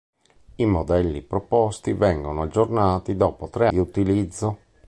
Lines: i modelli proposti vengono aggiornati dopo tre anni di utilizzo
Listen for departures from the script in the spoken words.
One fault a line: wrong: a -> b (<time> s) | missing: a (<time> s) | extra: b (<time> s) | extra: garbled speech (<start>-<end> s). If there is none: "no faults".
missing: anni (3.7 s)